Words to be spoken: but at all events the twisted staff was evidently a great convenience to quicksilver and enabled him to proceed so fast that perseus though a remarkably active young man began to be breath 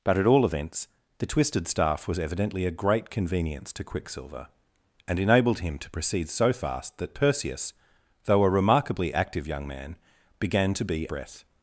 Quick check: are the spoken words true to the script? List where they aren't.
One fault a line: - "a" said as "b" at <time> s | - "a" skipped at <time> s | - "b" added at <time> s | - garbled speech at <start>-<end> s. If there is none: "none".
none